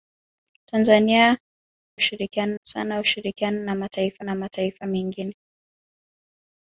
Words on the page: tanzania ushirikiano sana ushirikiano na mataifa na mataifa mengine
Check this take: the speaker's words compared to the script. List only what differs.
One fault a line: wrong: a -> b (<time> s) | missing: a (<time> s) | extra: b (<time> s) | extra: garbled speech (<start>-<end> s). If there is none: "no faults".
no faults